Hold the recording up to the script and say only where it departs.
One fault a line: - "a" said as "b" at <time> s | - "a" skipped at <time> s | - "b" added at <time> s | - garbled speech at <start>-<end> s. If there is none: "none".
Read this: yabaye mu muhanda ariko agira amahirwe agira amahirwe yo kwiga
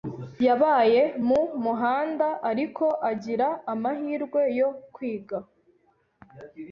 - "agira amahirwe" skipped at 4.4 s